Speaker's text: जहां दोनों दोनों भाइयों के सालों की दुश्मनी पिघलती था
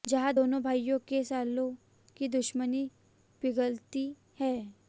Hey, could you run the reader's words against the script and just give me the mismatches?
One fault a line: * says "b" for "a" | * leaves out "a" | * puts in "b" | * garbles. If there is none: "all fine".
* leaves out "दोनों"
* says "है" for "था"